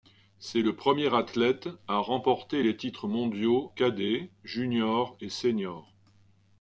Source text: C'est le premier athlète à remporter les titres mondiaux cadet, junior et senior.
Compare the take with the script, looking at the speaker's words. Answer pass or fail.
pass